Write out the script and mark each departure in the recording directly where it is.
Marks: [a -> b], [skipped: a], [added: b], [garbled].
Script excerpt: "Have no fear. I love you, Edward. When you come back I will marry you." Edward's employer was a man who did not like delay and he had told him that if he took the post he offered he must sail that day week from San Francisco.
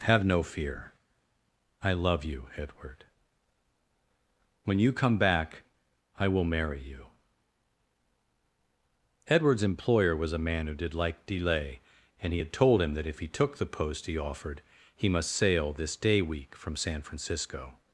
"Have no fear. I love you, Edward. When you come back I will marry you." Edward's employer was a man who did [skipped: not] like delay and he had told him that if he took the post he offered he must sail [that -> this] day week from San Francisco.